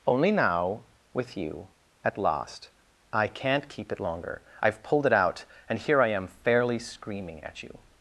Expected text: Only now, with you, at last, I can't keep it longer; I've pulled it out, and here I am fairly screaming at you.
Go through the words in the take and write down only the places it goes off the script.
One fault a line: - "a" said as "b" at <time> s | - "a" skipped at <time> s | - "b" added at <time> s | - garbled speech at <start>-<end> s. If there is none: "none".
none